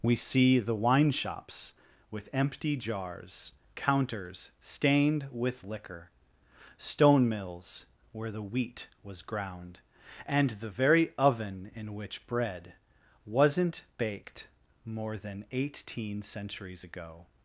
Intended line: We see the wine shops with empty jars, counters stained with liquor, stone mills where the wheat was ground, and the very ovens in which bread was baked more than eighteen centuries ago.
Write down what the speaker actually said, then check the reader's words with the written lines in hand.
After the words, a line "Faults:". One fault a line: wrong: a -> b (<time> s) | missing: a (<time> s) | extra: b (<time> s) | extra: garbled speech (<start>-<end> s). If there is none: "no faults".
We see the wine shops with empty jars, counters stained with liquor, stone mills where the wheat was ground, and the very oven in which bread wasn't baked more than eighteen centuries ago.
Faults:
wrong: ovens -> oven (11.2 s)
wrong: was -> wasn't (13.3 s)